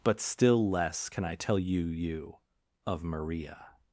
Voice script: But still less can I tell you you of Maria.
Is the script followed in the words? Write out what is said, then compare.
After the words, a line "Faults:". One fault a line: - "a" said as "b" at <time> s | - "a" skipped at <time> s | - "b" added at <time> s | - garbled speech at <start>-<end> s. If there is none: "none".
But still less can I tell you you of Maria.
Faults:
none